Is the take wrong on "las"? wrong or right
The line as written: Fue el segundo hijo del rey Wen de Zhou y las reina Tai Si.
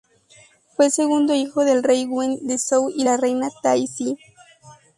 wrong